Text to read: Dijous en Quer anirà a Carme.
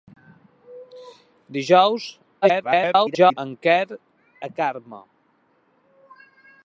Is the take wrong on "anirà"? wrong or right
wrong